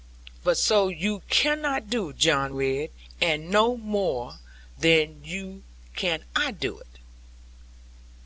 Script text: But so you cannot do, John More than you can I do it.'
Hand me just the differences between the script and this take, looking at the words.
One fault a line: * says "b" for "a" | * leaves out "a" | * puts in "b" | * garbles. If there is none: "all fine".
* puts in "Ridd and no"